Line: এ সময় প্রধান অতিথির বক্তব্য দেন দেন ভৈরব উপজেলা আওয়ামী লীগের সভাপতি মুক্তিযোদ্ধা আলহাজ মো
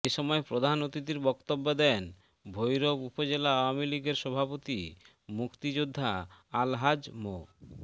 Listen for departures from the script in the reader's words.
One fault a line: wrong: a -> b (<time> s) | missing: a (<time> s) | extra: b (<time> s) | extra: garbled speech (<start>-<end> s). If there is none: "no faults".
missing: দেন (2.0 s)